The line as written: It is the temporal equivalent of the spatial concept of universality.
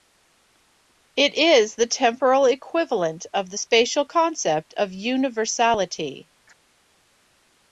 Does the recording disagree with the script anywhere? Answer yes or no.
no